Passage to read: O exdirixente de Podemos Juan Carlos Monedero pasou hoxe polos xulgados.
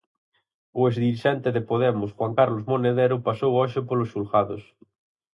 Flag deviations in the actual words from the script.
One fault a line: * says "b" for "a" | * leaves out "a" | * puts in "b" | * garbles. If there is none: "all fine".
all fine